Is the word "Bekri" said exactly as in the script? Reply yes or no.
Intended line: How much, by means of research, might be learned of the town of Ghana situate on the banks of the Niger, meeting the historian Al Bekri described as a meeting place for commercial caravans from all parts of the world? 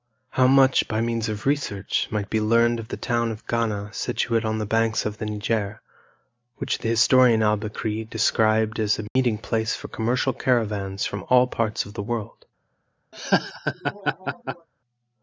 yes